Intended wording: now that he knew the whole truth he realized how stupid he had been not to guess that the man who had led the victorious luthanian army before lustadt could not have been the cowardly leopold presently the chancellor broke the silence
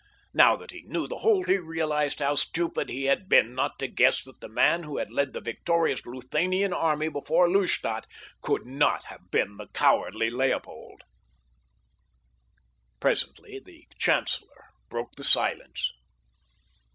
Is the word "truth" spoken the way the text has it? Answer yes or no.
no